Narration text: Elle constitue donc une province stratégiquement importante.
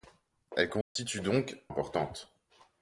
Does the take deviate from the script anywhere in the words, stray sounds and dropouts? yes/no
yes